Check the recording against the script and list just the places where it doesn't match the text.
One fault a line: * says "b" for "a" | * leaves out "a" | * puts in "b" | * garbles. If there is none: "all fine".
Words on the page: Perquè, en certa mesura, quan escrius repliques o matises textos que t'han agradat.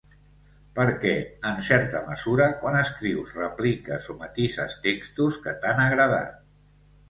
all fine